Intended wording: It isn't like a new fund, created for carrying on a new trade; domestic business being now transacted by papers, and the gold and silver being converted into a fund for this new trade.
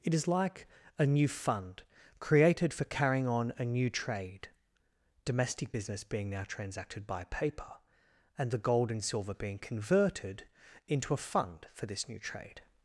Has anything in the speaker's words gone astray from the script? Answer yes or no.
yes